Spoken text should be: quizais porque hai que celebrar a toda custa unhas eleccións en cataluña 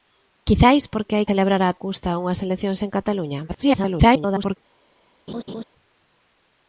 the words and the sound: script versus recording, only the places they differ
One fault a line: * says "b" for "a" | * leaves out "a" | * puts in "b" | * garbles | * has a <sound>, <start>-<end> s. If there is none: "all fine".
* leaves out "que"
* leaves out "toda"
* garbles
* has a laugh, 5.3-5.6 s